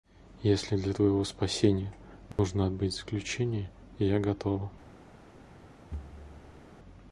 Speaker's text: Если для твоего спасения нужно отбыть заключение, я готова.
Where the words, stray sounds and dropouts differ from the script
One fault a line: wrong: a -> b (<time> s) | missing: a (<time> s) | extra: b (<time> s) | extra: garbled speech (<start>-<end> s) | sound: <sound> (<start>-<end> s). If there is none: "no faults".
sound: dropout (2.3-2.4 s)
sound: thud (5.9-6.7 s)